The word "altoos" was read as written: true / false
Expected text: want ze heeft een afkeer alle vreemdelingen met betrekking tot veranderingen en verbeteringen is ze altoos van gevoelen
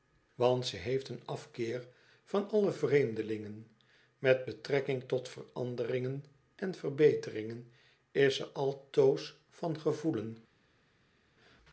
true